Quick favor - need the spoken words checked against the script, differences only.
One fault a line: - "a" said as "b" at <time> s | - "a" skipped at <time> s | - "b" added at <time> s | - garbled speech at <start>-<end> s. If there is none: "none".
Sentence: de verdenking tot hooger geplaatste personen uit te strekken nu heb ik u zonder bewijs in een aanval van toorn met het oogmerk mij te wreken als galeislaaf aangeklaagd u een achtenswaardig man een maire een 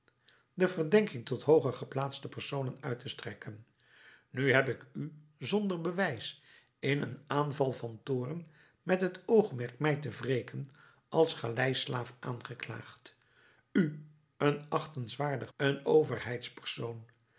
- "man een maire" skipped at 15.5 s